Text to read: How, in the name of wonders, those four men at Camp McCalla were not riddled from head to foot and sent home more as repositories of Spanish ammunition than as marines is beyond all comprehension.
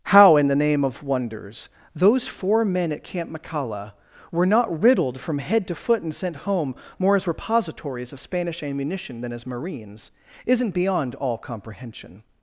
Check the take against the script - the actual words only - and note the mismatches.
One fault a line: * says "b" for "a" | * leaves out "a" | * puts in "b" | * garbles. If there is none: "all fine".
* says "isn't" for "is"